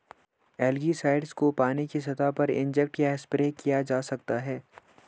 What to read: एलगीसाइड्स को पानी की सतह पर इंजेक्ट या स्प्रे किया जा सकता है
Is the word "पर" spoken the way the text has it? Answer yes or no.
yes